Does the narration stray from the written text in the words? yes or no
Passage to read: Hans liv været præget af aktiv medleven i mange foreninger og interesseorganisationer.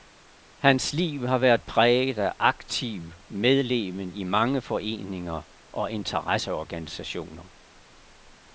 yes